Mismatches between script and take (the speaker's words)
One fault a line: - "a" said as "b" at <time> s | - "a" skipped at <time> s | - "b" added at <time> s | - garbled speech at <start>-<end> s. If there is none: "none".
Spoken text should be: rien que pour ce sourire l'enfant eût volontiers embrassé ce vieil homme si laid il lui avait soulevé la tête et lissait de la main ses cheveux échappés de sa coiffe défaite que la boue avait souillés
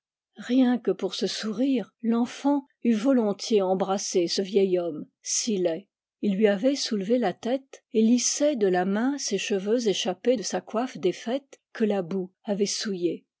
none